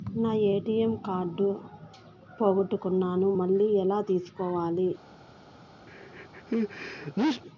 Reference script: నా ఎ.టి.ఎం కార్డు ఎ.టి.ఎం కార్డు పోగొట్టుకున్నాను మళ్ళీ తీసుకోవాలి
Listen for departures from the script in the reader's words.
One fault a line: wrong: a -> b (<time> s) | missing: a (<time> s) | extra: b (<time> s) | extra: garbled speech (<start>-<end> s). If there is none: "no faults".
missing: ఎ.టి.ఎం కార్డు (1.5 s)
extra: ఎలా (3.7 s)